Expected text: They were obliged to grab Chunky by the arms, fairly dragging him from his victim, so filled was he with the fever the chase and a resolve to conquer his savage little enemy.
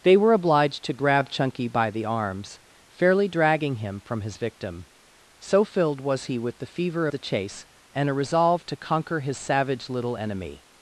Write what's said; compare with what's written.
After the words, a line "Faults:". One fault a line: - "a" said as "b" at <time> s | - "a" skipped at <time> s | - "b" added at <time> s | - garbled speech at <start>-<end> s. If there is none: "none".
They were obliged to grab Chunky by the arms, fairly dragging him from his victim, so filled was he with the fever the chase and a resolve to conquer his savage little enemy.
Faults:
none